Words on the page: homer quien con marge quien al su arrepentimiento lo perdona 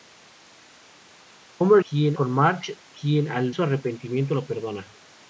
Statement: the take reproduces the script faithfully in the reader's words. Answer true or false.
true